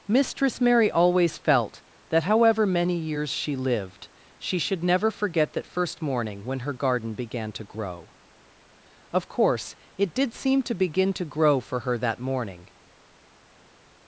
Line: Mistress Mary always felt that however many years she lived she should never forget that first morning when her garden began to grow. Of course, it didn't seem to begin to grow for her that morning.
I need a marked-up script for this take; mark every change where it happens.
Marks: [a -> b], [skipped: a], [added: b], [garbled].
Mistress Mary always felt that however many years she lived she should never forget that first morning when her garden began to grow. Of course, it [didn't -> did] seem to begin to grow for her that morning.